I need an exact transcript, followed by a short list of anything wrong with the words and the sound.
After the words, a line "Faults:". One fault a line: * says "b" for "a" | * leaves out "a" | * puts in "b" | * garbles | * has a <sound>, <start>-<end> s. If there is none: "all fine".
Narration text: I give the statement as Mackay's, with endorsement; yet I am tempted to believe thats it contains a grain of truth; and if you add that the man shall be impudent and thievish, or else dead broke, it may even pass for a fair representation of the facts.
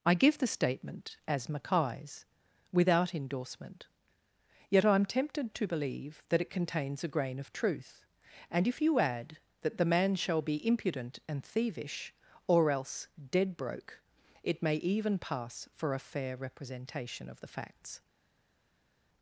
I give the statement as Mackay's, without endorsement; yet I am tempted to believe that it contains a grain of truth; and if you add that the man shall be impudent and thievish, or else dead broke, it may even pass for a fair representation of the facts.
Faults:
* says "without" for "with"
* says "that" for "thats"